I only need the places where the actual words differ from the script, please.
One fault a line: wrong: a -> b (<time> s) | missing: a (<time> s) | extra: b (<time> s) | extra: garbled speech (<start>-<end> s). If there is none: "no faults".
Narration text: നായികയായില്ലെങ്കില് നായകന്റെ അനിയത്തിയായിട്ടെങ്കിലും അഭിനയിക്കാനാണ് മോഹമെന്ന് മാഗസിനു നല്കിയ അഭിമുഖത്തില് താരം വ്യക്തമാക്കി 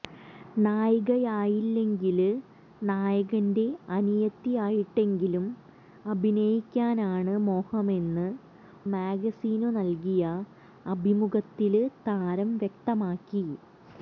no faults